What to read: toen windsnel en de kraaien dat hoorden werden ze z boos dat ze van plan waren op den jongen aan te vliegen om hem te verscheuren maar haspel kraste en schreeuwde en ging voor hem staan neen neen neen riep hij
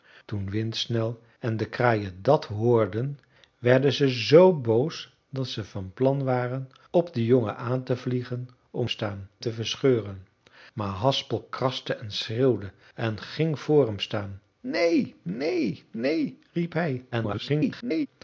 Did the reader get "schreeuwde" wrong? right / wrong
right